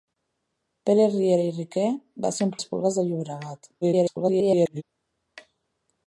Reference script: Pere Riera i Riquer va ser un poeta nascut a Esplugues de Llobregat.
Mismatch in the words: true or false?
true